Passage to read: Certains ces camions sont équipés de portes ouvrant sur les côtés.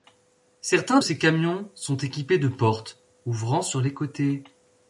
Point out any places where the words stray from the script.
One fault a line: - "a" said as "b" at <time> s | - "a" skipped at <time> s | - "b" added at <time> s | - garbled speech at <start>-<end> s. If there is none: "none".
none